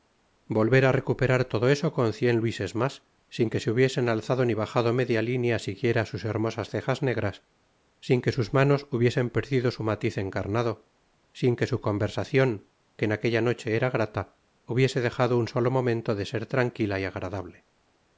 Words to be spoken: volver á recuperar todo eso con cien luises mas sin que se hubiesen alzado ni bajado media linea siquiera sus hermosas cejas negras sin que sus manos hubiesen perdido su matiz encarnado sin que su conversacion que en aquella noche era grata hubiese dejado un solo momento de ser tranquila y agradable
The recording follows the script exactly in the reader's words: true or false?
true